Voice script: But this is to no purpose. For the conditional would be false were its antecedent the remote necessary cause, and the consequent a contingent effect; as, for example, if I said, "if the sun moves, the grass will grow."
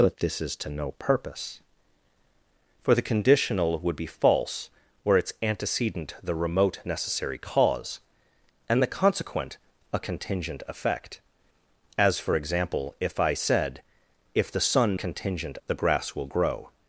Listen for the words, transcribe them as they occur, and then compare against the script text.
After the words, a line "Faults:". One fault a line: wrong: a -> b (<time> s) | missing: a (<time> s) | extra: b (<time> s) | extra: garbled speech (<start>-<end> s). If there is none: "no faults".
But this is to no purpose. For the conditional would be false were its antecedent the remote necessary cause, and the consequent a contingent effect; as, for example, if I said, "if the sun contingent, the grass will grow."
Faults:
wrong: moves -> contingent (14.9 s)